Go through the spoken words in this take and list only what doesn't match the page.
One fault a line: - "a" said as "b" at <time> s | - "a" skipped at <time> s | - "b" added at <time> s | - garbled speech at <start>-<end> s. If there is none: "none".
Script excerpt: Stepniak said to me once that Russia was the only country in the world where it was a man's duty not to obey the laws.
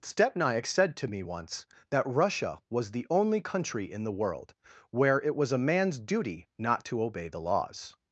none